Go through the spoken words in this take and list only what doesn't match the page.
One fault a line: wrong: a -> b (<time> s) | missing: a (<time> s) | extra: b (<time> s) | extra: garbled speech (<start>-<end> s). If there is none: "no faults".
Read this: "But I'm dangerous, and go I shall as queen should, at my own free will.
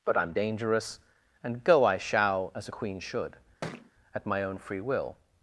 no faults